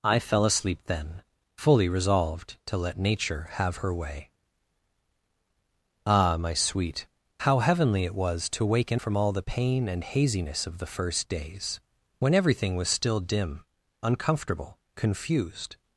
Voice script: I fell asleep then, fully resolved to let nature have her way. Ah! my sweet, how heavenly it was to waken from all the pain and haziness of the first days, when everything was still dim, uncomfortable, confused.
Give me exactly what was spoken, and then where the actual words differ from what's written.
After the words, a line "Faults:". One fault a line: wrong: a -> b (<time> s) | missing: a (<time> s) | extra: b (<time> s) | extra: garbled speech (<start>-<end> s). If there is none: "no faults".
I fell asleep then, fully resolved to let nature have her way. Ah! my sweet, how heavenly it was to waken from all the pain and haziness of the first days, when everything was still dim, uncomfortable, confused.
Faults:
no faults